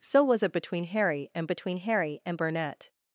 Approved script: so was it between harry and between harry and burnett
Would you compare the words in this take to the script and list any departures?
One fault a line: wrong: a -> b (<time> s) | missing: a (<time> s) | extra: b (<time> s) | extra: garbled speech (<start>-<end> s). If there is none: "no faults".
no faults